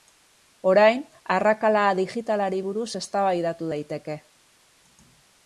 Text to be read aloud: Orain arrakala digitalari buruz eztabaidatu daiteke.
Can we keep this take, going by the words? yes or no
yes